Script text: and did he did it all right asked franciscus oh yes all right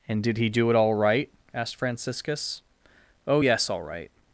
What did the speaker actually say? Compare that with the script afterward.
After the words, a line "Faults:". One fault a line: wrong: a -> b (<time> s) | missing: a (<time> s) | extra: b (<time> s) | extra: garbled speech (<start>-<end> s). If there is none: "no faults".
and did he do it all right asked franciscus oh yes all right
Faults:
wrong: did -> do (0.5 s)